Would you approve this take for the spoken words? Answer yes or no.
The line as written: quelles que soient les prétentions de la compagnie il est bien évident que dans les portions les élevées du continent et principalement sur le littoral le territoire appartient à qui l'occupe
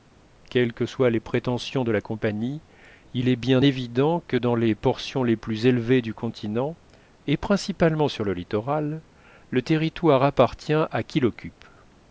no